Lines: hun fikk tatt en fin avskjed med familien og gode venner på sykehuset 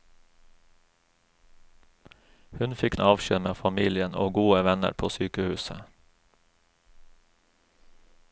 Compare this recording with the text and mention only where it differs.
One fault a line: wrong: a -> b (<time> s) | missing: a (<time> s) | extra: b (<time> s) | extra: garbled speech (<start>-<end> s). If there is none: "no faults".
missing: tatt en fin (3.0 s)